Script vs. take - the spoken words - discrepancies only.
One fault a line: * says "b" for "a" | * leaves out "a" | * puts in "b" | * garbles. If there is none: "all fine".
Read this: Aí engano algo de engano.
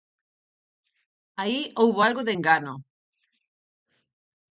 * says "houbo" for "engano"